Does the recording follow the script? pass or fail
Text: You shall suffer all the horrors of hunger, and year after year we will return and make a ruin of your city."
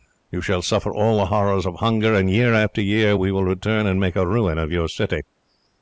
pass